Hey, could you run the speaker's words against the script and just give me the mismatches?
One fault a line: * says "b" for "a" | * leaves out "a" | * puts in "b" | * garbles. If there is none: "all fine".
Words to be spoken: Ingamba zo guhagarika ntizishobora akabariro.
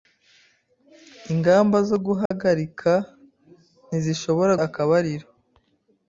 all fine